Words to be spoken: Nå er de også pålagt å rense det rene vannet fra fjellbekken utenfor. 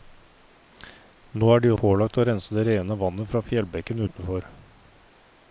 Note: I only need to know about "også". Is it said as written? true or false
false